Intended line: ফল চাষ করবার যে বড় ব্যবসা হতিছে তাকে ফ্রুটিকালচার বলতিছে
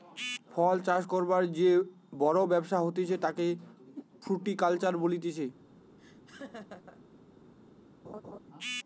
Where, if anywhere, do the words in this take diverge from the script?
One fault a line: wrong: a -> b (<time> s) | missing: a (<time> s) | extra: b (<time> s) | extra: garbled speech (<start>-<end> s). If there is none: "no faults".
no faults